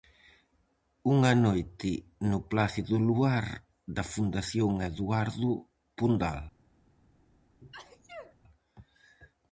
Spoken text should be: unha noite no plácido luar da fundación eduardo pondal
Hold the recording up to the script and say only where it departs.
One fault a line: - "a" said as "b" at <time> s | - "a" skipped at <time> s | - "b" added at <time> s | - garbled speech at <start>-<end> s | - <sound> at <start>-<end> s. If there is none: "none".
- sneeze at 7.6-8.4 s